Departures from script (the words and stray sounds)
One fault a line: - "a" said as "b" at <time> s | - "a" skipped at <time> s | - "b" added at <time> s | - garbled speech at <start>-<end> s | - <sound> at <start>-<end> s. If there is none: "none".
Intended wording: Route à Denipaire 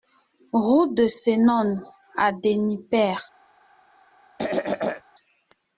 - "de Senones" added at 0.9 s
- throat clearing at 4.4-5.0 s